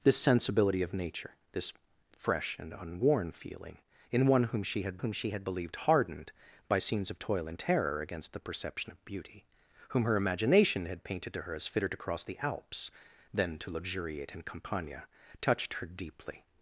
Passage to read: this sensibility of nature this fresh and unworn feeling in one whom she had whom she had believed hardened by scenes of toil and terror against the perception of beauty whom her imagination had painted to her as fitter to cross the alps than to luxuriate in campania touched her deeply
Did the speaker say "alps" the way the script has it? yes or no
yes